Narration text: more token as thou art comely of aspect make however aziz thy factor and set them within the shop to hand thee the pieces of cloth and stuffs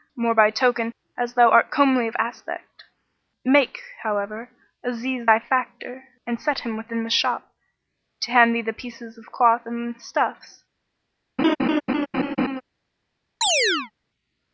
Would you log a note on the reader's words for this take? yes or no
yes